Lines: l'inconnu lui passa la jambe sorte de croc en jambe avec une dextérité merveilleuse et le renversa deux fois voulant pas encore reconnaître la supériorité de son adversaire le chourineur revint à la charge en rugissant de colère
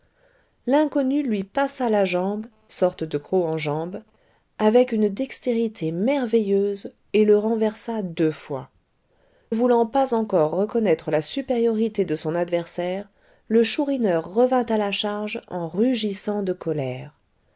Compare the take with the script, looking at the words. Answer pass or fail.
pass